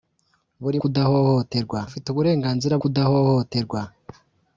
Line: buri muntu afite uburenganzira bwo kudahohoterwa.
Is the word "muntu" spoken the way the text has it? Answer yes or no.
no